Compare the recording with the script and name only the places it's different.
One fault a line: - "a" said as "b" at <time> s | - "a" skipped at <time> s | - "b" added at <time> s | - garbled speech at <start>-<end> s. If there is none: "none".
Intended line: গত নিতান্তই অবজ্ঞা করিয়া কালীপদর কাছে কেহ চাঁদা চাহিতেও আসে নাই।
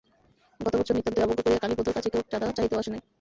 - "বৎসর" added at 0.8 s